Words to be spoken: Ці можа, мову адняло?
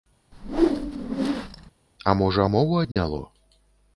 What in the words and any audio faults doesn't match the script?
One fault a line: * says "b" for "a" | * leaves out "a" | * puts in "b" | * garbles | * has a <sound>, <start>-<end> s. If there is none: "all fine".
* has a whoosh, 0.3-1.7 s
* says "А" for "Ці"
* has a dropout, 2.9-3.0 s